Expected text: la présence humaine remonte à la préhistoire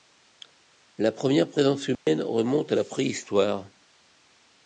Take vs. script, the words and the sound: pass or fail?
fail